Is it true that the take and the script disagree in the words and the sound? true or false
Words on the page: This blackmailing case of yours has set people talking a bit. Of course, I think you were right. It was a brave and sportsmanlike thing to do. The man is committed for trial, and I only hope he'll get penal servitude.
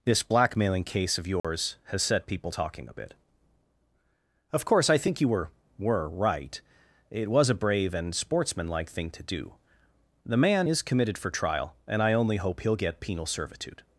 true